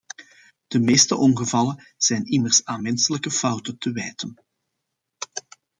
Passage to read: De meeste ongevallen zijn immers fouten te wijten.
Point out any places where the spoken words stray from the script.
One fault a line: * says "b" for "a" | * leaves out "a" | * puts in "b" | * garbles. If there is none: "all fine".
* puts in "aan menselijke"